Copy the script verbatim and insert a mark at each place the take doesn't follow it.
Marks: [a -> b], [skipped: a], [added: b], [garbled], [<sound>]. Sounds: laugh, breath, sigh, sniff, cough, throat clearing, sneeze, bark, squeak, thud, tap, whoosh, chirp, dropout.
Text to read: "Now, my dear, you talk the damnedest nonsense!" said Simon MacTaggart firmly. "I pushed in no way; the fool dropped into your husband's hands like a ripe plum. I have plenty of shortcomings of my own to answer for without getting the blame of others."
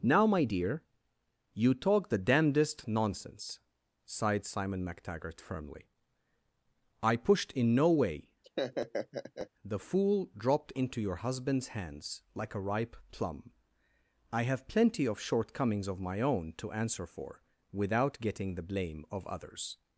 "Now, my dear, you talk the damnedest nonsense!" [said -> sighed] Simon MacTaggart firmly. "I pushed in no way; [laugh] the fool dropped into your husband's hands like a ripe plum. I have plenty of shortcomings of my own to answer for without getting the blame of others."